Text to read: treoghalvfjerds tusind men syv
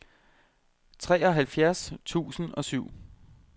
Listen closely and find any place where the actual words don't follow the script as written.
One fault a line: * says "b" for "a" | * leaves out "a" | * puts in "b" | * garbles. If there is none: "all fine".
* says "og" for "men"